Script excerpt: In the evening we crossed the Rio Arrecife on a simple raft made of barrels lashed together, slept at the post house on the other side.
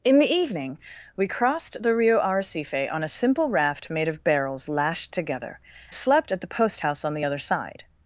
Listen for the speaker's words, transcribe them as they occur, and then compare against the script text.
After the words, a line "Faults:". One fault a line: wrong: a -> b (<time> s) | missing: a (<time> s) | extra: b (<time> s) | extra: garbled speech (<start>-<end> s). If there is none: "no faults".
In the evening we crossed the Rio Arrecife on a simple raft made of barrels lashed together, slept at the post house on the other side.
Faults:
no faults